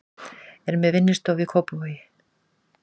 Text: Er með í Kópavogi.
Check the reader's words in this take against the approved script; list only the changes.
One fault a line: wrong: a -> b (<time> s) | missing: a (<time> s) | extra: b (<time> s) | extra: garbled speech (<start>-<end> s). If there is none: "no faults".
extra: vinnustofu (0.9 s)